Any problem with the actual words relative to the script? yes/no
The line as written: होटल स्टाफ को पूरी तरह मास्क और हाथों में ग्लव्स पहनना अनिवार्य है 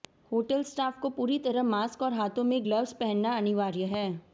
no